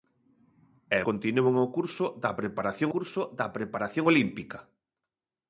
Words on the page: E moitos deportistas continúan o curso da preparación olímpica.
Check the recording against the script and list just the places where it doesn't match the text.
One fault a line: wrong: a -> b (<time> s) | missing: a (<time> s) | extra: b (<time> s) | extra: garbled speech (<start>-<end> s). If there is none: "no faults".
wrong: moitos deportistas continúan o -> continúan o curso da preparación (1.1 s)